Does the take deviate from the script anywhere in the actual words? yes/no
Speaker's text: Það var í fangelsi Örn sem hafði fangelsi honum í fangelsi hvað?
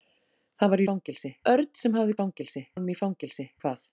no